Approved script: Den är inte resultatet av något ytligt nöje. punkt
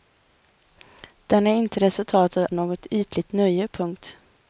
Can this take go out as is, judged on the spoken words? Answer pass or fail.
fail